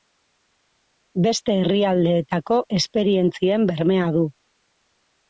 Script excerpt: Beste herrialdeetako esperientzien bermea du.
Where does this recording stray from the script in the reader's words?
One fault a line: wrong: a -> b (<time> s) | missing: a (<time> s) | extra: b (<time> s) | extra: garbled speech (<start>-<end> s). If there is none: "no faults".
no faults